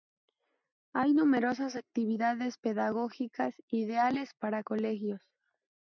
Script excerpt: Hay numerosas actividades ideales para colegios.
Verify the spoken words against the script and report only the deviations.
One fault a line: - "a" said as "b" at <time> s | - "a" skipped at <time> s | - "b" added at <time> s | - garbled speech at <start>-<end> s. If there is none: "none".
- "pedagógicas" added at 2.6 s